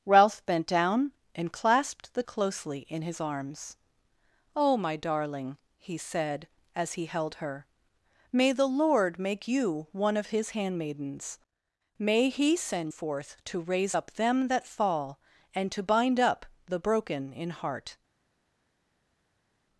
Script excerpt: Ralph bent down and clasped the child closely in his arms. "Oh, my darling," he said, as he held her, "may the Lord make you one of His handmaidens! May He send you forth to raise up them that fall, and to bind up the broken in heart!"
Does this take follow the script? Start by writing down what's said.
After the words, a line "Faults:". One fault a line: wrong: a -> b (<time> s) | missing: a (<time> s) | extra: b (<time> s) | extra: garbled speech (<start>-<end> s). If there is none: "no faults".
Ralph bent down and clasped the closely in his arms. "Oh, my darling," he said, as he held her, "may the Lord make you one of His handmaidens! May He send forth to raise up them that fall, and to bind up the broken in heart!"
Faults:
missing: child (2.2 s)
missing: you (12.9 s)